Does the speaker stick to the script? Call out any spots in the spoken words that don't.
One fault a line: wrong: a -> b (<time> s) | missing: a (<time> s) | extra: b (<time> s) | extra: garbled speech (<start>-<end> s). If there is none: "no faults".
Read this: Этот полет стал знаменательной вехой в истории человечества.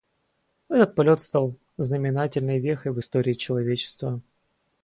no faults